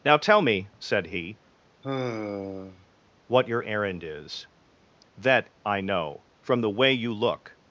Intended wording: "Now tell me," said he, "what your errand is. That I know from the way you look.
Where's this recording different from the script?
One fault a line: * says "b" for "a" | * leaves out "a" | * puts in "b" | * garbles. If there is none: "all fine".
all fine